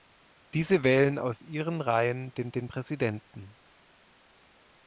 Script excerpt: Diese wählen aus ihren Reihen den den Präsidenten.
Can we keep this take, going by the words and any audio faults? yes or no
yes